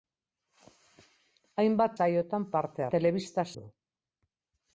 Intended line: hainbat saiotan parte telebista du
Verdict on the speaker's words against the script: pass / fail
pass